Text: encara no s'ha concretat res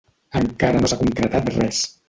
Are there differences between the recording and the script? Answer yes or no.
no